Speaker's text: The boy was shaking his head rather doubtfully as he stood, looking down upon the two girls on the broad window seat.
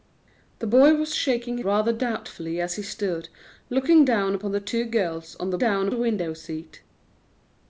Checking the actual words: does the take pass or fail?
fail